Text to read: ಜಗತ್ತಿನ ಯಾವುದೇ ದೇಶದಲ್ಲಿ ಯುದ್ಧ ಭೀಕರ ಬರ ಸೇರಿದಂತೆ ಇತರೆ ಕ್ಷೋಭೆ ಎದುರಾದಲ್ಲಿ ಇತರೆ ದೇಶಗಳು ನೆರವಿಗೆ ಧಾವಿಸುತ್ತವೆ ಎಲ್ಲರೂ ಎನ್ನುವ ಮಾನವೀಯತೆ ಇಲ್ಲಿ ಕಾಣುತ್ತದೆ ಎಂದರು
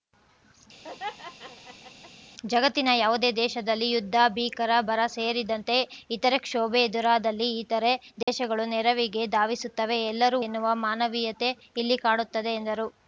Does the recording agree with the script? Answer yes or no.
yes